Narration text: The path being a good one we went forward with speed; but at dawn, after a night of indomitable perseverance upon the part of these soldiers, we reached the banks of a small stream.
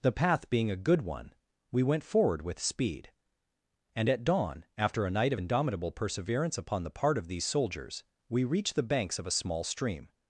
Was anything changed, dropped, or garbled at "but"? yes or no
yes